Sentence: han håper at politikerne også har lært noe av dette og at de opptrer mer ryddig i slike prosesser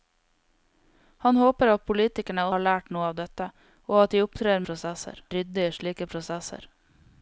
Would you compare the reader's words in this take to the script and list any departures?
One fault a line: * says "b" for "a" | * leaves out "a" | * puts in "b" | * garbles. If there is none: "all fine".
* leaves out "også"
* says "prosesser" for "mer"